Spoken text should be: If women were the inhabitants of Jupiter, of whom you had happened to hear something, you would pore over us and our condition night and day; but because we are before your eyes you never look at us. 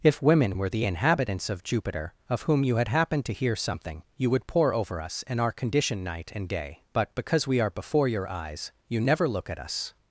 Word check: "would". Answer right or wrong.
right